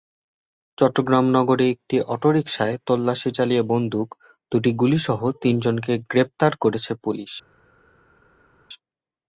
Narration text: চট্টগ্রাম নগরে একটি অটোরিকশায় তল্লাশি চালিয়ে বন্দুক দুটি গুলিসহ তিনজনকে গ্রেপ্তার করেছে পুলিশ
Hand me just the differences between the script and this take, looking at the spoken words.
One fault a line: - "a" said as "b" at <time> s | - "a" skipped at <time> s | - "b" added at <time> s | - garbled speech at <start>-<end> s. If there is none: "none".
none